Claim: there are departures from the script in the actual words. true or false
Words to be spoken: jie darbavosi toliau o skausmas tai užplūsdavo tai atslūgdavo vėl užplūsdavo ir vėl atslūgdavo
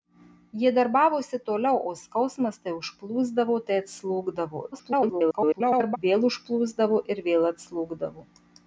true